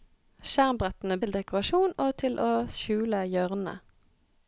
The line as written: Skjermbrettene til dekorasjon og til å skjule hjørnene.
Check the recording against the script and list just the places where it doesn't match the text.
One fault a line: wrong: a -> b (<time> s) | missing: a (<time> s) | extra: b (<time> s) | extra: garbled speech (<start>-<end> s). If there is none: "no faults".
no faults